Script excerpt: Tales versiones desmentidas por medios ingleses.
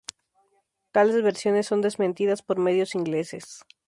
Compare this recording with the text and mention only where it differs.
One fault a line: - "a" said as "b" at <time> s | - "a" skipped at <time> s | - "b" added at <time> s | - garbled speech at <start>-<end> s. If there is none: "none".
- "son" added at 1.7 s